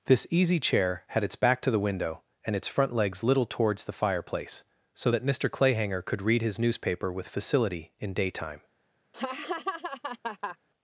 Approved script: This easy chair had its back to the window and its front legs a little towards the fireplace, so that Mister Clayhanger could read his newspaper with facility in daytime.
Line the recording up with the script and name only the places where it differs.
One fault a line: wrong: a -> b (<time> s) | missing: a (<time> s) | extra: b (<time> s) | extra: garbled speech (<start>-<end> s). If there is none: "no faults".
missing: a (3.2 s)